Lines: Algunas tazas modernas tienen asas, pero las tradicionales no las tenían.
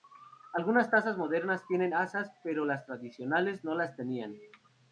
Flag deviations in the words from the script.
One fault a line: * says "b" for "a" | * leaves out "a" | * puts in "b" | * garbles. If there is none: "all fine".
all fine